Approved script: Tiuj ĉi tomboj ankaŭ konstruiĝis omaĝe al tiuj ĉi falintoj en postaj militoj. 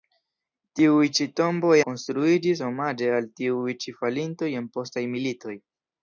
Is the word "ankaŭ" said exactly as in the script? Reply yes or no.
no